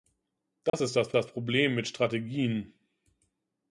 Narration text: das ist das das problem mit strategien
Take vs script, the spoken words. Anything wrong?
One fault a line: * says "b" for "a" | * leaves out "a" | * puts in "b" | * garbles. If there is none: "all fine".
all fine